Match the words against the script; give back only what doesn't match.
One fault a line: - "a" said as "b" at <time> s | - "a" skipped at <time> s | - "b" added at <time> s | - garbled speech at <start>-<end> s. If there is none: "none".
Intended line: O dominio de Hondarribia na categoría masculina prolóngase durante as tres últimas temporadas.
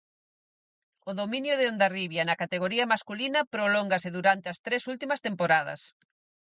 none